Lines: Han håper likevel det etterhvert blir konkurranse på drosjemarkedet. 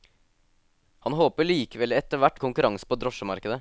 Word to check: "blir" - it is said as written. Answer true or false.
false